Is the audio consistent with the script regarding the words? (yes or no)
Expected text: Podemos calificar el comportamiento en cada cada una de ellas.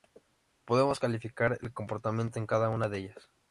no